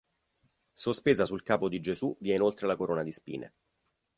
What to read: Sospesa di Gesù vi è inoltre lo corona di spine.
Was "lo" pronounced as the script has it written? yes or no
no